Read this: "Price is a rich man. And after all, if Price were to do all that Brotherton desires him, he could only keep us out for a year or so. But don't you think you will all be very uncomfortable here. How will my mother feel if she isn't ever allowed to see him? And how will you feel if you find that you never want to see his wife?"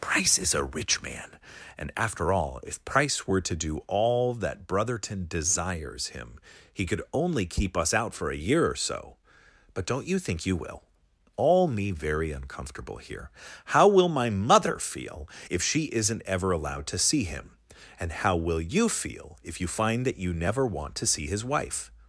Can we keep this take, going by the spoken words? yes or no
no